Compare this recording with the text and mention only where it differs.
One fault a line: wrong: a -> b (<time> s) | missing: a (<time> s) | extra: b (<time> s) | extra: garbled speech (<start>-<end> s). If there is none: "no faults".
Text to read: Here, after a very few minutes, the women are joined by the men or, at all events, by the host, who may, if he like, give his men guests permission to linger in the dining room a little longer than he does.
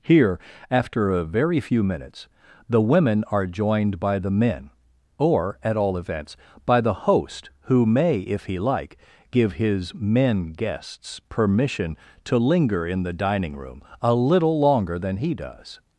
no faults